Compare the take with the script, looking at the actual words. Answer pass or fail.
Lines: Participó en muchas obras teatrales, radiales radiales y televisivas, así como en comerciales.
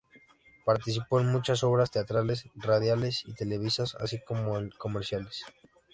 fail